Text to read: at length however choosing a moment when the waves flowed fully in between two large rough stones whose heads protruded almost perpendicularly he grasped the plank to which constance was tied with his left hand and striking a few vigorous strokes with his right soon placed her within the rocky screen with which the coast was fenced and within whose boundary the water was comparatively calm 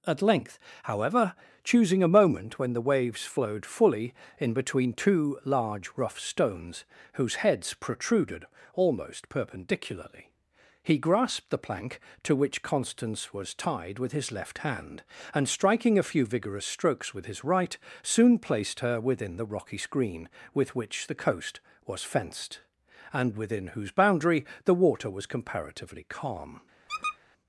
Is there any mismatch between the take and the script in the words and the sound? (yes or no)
yes